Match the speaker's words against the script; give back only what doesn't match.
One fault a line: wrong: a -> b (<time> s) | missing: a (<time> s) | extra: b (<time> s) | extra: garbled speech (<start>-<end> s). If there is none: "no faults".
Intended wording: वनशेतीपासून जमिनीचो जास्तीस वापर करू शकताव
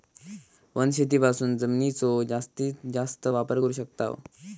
extra: जास्त (2.9 s)